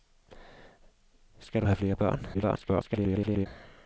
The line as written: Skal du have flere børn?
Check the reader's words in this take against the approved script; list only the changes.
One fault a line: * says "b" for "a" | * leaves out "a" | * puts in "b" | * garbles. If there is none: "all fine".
* garbles